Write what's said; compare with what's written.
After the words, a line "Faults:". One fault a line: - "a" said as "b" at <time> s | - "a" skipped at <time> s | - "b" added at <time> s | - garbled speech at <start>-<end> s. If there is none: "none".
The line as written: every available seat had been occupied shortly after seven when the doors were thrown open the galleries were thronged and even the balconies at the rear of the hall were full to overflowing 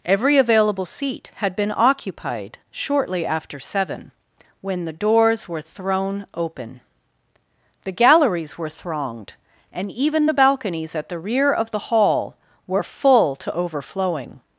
every available seat had been occupied shortly after seven when the doors were thrown open the galleries were thronged and even the balconies at the rear of the hall were full to overflowing
Faults:
none